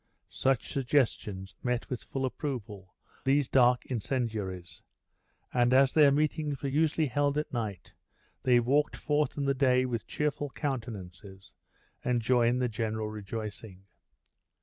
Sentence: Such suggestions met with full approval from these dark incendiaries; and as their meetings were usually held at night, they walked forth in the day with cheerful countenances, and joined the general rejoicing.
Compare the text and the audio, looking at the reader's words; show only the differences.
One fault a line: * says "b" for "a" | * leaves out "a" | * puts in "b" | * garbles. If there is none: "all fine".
* leaves out "from"